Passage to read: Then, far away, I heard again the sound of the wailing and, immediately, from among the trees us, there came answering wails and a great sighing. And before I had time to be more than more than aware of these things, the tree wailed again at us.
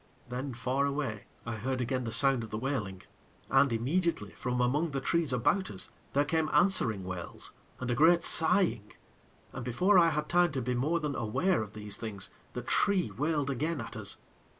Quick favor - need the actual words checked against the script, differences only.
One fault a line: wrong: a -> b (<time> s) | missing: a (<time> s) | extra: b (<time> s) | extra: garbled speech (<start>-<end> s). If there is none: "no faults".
extra: about (5.3 s)
missing: more than (11.1 s)